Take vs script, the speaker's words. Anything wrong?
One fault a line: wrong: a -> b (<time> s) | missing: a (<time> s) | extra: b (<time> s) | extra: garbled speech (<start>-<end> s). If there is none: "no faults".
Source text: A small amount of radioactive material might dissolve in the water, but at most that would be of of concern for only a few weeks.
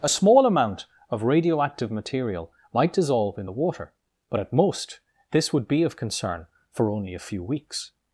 wrong: that -> this (5.3 s)
missing: of (5.9 s)